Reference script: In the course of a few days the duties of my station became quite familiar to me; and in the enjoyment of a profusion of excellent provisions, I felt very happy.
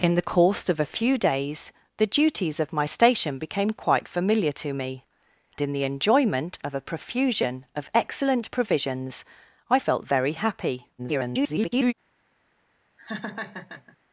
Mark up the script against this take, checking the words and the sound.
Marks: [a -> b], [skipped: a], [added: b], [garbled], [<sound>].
In the course of a few days the duties of my station became quite familiar to me; [skipped: and] in the enjoyment of a profusion of excellent provisions, I felt very happy. [garbled] [laugh]